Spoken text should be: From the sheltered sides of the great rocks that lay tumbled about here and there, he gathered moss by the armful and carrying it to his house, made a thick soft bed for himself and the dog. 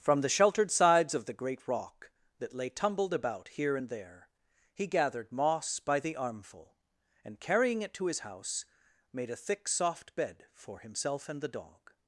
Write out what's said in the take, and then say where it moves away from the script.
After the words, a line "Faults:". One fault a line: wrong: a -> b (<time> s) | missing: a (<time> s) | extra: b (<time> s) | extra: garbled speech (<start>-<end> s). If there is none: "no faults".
From the sheltered sides of the great rock that lay tumbled about here and there, he gathered moss by the armful and carrying it to his house, made a thick soft bed for himself and the dog.
Faults:
wrong: rocks -> rock (1.7 s)